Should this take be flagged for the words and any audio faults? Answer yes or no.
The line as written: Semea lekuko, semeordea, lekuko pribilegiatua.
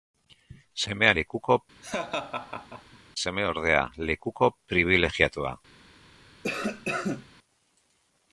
yes